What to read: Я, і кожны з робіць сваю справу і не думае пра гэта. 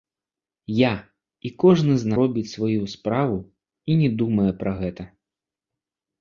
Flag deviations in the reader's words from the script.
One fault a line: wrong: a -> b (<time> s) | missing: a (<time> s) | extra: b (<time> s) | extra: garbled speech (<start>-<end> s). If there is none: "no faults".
no faults